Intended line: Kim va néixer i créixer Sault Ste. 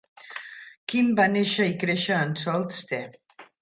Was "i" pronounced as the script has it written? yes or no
yes